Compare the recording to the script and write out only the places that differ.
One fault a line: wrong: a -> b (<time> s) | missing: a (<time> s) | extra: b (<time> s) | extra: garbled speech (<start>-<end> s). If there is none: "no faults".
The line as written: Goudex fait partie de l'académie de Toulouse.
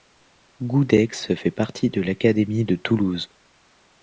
no faults